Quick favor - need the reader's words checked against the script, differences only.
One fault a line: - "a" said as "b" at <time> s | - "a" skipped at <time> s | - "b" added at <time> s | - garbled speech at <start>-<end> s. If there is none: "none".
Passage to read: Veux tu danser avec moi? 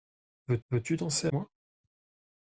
- "veux" added at 0.7 s
- "avec" skipped at 1.3 s